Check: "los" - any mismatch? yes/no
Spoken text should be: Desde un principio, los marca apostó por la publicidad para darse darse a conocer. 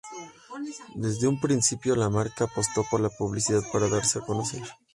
yes